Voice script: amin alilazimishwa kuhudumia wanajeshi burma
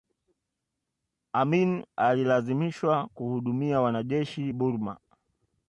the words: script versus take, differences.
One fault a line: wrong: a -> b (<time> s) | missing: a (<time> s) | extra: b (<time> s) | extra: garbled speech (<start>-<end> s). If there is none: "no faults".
no faults